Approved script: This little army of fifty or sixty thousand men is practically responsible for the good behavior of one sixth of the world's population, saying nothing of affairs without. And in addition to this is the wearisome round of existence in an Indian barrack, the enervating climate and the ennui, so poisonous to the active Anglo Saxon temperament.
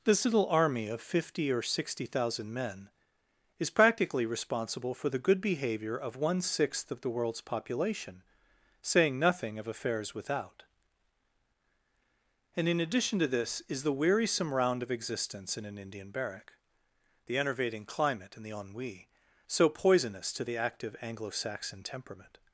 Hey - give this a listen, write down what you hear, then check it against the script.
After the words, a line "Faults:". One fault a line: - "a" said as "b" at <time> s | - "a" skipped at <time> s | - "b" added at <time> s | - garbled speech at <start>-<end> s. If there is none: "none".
This little army of fifty or sixty thousand men is practically responsible for the good behavior of one sixth of the world's population, saying nothing of affairs without. And in addition to this is the wearisome round of existence in an Indian barrack, the enervating climate and the ennui, so poisonous to the active Anglo Saxon temperament.
Faults:
none